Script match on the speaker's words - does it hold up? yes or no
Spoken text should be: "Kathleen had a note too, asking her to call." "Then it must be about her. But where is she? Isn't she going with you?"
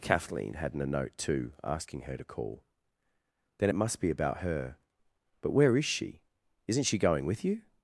no